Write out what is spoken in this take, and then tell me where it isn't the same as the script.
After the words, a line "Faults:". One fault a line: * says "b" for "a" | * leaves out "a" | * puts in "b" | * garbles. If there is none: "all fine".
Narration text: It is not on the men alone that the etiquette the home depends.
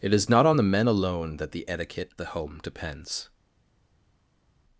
It is not on the men alone that the etiquette the home depends.
Faults:
all fine